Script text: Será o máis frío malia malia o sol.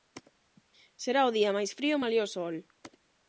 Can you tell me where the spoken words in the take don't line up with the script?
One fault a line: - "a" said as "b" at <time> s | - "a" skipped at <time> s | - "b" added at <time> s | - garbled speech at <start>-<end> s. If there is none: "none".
- "día" added at 1.4 s
- "malia" skipped at 2.3 s